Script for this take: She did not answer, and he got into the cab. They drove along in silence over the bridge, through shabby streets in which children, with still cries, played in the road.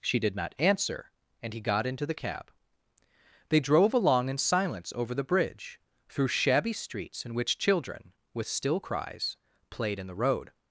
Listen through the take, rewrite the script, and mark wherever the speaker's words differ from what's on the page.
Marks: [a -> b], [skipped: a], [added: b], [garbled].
She did not answer, and he got into the cab. They drove along in silence over the bridge, through shabby streets in which children, with still cries, played in the road.